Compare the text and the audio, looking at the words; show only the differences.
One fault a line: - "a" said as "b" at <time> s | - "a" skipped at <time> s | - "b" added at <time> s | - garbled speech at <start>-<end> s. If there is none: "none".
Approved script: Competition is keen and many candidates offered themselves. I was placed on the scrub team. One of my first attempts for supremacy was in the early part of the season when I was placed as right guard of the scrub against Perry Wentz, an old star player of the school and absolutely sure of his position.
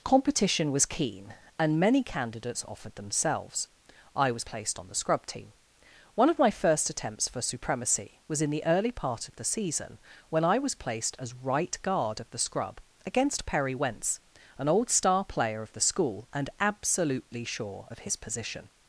- "is" said as "was" at 0.7 s